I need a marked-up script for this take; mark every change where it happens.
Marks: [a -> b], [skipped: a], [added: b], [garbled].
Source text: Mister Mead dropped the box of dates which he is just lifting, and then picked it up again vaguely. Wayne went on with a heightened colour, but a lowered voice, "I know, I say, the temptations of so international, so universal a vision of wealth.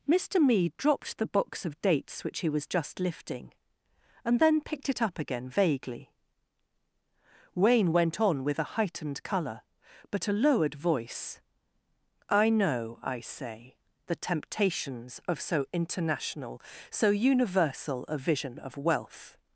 Mister Mead dropped the box of dates which he [is -> was] just lifting, and then picked it up again vaguely. Wayne went on with a heightened colour, but a lowered voice, "I know, I say, the temptations of so international, so universal a vision of wealth.